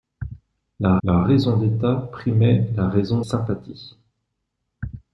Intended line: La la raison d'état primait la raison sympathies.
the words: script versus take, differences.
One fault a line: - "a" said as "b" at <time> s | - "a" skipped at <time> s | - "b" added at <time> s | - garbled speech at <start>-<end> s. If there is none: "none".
none